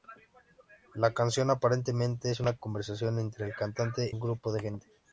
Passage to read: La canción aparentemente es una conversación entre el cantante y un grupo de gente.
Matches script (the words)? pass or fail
fail